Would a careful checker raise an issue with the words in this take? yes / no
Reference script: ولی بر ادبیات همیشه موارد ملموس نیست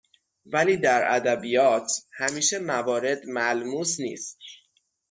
yes